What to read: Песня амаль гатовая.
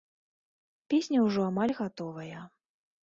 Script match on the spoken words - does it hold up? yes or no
no